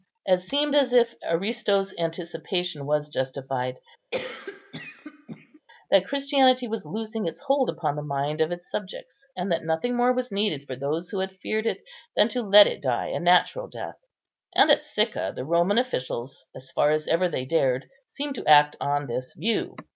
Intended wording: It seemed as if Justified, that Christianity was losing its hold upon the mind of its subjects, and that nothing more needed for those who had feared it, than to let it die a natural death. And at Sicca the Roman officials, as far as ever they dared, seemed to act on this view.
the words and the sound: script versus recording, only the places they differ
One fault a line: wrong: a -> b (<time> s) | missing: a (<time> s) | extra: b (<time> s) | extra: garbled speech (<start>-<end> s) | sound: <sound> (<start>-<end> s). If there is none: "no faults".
extra: Aristo's anticipation was (1.2 s)
sound: cough (4.1-5.6 s)
extra: was (10.1 s)